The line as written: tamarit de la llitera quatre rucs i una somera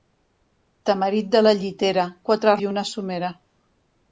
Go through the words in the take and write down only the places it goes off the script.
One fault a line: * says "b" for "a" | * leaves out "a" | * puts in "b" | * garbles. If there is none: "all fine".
* leaves out "rucs"